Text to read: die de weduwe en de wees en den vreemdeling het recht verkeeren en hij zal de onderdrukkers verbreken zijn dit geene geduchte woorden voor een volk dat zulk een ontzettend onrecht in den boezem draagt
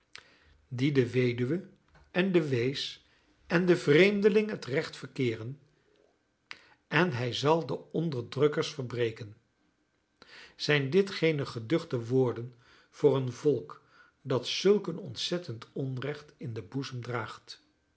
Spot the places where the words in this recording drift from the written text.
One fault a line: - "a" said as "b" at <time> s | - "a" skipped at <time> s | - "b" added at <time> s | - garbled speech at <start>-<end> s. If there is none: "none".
none